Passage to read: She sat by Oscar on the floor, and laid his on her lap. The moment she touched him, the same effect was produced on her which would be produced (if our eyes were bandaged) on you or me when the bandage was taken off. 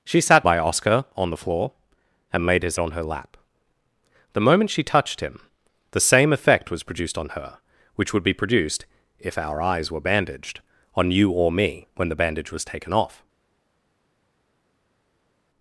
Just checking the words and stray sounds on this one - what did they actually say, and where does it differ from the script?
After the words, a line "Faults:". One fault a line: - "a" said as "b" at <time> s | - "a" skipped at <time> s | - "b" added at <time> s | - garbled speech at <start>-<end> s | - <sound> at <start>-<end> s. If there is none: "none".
She sat by Oscar on the floor, and laid his on her lap. The moment she touched him, the same effect was produced on her which would be produced (if our eyes were bandaged) on you or me when the bandage was taken off.
Faults:
none